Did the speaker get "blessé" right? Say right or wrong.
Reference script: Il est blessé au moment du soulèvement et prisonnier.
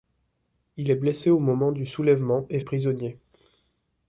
right